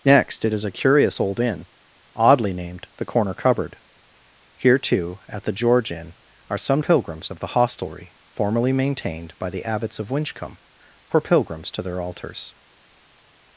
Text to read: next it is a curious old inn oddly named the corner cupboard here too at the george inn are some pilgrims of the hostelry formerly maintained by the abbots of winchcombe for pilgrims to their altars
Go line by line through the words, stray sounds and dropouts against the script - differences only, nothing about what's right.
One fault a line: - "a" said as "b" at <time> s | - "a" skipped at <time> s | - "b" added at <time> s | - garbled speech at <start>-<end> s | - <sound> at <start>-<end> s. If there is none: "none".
none